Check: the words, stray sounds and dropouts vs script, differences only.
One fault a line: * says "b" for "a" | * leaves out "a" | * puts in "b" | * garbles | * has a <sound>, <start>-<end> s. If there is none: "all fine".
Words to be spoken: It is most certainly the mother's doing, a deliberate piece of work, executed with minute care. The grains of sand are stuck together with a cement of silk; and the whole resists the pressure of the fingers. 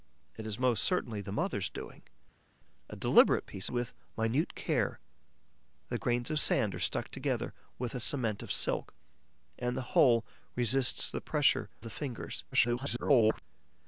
* leaves out "of work executed"
* leaves out "of"
* garbles